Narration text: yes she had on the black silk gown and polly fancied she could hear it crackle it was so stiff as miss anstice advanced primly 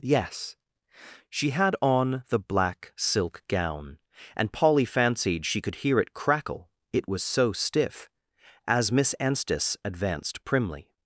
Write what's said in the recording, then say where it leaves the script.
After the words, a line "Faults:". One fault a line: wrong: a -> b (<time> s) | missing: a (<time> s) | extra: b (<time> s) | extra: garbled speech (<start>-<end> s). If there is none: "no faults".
yes she had on the black silk gown and polly fancied she could hear it crackle it was so stiff as miss anstice advanced primly
Faults:
no faults